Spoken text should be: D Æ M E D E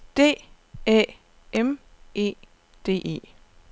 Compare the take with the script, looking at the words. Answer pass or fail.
pass